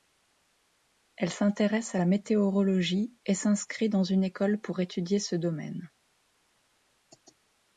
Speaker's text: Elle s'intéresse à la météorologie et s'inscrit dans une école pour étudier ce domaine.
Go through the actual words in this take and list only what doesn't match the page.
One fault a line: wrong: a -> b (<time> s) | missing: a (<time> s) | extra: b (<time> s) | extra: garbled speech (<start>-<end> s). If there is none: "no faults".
no faults